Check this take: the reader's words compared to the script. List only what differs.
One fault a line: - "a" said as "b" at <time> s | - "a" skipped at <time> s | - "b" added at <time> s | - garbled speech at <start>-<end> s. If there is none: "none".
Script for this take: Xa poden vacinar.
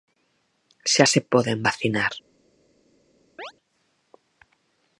- "se" added at 1.1 s